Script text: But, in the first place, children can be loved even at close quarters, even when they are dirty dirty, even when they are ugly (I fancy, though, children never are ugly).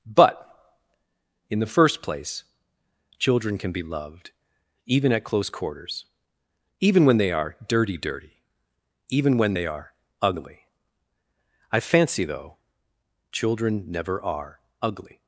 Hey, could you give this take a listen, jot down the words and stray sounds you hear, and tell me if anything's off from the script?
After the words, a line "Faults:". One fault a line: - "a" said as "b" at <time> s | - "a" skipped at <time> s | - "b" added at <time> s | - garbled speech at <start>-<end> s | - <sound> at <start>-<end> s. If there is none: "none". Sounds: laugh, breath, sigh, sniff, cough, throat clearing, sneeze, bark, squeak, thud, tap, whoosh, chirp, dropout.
But, in the first place, children can be loved even at close quarters, even when they are dirty dirty, even when they are ugly (I fancy, though, children never are ugly).
Faults:
none